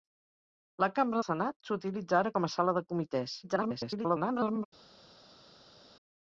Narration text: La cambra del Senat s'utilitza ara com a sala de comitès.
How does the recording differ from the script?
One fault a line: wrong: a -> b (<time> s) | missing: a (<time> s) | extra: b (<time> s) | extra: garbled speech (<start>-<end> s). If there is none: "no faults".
missing: del (1.2 s)
extra: garbled speech (3.4-4.7 s)